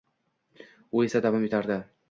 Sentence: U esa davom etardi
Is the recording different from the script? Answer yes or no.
no